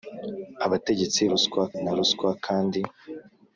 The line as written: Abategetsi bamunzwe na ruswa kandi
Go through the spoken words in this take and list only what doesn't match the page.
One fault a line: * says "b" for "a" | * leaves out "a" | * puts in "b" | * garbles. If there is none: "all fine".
* says "ruswa" for "bamunzwe"